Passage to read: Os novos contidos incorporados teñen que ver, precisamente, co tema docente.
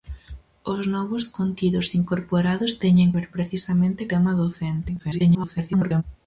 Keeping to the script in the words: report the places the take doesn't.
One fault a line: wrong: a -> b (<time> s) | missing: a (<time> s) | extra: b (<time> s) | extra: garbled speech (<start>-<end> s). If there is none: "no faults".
missing: que (3.1 s)
missing: co (4.0 s)
extra: garbled speech (5.0-6.0 s)